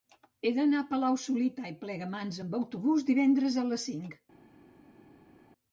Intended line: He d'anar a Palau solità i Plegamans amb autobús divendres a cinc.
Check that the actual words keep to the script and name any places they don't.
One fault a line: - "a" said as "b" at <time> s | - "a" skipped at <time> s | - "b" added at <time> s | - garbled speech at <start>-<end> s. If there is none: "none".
- "les" added at 3.7 s